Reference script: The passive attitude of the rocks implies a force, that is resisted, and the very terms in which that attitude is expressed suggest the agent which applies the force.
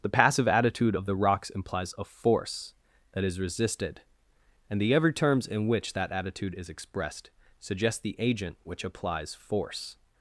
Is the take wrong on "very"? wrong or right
wrong